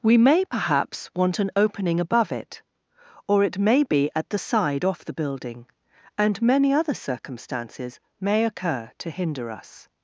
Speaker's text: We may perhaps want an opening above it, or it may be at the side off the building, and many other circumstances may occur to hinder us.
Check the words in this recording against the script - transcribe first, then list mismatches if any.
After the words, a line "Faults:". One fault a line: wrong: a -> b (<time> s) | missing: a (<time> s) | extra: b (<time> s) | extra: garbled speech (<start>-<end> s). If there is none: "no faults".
We may perhaps want an opening above it, or it may be at the side off the building, and many other circumstances may occur to hinder us.
Faults:
no faults